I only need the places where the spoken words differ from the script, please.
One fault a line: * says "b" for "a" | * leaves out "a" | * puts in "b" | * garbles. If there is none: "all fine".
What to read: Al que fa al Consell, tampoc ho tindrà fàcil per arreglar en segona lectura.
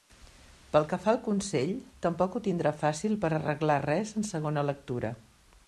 * says "Pel" for "Al"
* puts in "res"